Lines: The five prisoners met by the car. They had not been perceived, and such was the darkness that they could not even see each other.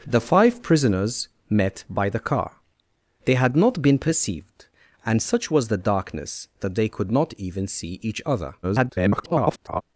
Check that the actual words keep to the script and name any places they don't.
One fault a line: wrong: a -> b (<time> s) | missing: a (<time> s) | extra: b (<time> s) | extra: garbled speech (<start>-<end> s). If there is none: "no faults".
extra: garbled speech (8.6-9.8 s)